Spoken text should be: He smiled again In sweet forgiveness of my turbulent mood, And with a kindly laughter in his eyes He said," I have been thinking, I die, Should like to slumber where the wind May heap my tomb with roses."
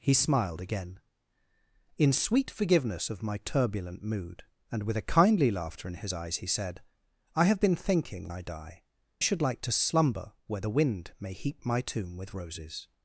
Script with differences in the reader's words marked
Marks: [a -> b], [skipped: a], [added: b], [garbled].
He smiled again In sweet forgiveness of my turbulent mood, And with a kindly laughter in his eyes He said," I have been thinking, I die, Should like to slumber where the wind May heap my tomb with roses."